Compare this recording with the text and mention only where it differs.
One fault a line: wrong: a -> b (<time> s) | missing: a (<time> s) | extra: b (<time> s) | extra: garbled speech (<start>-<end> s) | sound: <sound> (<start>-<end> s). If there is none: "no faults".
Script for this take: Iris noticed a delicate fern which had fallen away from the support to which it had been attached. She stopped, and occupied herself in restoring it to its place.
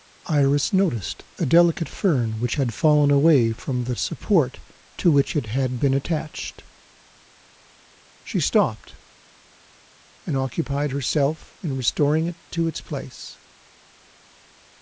no faults